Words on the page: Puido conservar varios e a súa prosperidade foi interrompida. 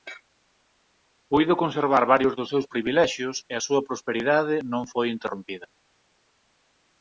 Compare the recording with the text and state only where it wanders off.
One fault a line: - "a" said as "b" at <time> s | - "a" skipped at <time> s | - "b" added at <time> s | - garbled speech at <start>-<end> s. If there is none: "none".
- "dos seus privilexios" added at 2.4 s
- "non" added at 4.7 s